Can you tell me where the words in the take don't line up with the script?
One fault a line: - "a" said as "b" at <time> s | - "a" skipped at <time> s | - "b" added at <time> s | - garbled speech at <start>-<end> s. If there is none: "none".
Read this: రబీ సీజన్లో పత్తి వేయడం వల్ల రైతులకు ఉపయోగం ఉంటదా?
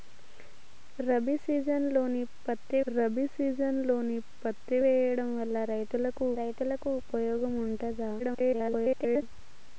- "రబీ సీజన్లో పత్తి" added at 2.9 s
- "రైతులకు" added at 6.4 s
- garbled speech at 8.2-9.2 s